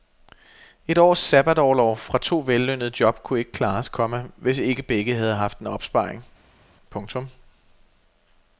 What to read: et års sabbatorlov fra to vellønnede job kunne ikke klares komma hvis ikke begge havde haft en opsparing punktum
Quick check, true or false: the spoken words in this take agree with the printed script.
true